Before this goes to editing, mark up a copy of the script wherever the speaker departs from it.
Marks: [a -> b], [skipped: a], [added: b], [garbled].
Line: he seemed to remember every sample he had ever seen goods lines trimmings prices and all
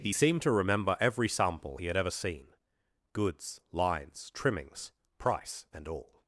he seemed to remember every sample he had ever seen goods lines trimmings [prices -> price] and all